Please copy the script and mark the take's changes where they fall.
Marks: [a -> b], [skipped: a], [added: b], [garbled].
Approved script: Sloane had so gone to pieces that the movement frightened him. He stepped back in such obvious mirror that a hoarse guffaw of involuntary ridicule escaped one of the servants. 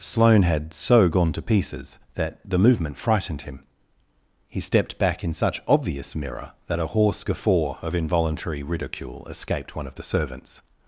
Sloane had so gone to pieces that the movement frightened him. He stepped back in such obvious mirror that a hoarse guffaw of involuntary ridicule escaped one of the servants.